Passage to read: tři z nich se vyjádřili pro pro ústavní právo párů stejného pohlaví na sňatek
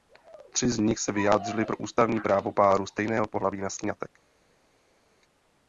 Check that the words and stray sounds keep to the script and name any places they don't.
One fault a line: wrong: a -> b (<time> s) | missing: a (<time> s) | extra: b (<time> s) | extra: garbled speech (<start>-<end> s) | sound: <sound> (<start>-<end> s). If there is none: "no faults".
missing: pro (1.8 s)